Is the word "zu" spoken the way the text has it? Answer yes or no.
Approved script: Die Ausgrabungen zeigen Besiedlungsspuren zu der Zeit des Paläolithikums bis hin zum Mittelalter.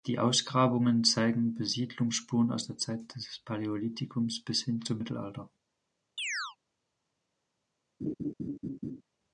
no